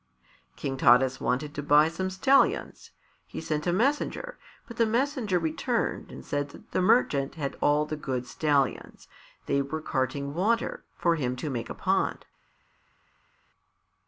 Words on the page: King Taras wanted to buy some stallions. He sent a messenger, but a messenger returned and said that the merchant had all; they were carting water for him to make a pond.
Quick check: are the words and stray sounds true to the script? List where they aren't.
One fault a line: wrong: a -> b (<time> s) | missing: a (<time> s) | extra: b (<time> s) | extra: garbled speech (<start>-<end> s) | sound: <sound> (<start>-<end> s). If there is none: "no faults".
wrong: a -> the (4.8 s)
extra: the good stallions (7.8 s)